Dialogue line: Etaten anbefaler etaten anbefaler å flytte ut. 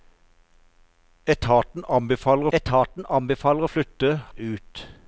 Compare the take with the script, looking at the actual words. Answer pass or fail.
pass